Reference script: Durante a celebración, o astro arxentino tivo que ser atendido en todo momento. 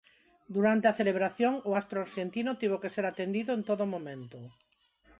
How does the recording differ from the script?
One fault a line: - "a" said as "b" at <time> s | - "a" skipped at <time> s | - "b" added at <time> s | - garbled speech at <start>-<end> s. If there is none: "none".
none